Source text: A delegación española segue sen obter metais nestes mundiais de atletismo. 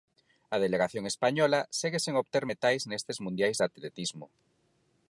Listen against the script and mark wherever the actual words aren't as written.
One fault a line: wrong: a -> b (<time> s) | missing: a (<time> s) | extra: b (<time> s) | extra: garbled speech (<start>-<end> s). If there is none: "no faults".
no faults